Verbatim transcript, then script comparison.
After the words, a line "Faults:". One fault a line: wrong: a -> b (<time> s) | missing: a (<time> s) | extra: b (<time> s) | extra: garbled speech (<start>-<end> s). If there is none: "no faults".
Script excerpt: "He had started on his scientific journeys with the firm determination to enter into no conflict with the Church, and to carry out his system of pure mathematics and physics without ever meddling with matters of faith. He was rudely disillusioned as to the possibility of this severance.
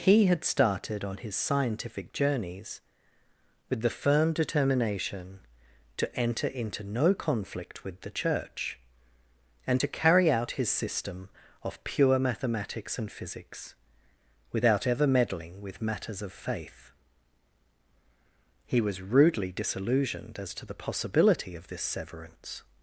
"He had started on his scientific journeys with the firm determination to enter into no conflict with the Church, and to carry out his system of pure mathematics and physics without ever meddling with matters of faith. He was rudely disillusioned as to the possibility of this severance.
Faults:
no faults